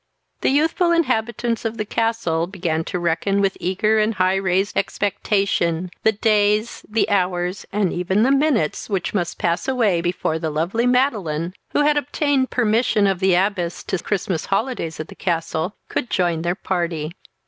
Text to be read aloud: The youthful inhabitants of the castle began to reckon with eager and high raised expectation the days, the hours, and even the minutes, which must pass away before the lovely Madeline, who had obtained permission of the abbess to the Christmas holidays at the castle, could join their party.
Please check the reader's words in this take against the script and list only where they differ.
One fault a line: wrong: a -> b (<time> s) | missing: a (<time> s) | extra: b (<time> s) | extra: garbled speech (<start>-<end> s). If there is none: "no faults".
no faults